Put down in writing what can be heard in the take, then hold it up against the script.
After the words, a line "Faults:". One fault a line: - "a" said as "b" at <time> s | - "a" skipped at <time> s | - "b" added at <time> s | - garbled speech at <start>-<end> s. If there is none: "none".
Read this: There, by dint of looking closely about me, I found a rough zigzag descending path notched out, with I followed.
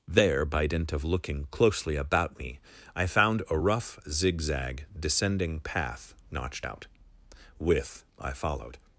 There, by dint of looking closely about me, I found a rough zigzag descending path notched out, with I followed.
Faults:
none